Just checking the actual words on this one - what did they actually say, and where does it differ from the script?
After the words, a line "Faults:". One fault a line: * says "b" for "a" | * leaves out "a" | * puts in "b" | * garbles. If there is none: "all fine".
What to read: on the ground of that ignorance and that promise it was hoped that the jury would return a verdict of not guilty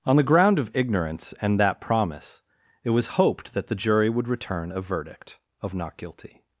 on the ground of ignorance and that promise it was hoped that the jury would return a verdict of not guilty
Faults:
* leaves out "that"